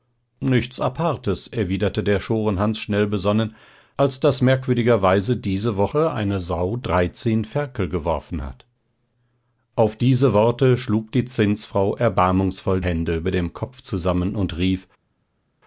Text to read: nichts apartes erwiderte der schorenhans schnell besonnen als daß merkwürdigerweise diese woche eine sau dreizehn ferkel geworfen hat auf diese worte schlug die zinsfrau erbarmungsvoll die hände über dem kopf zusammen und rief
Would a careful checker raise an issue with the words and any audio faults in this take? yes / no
yes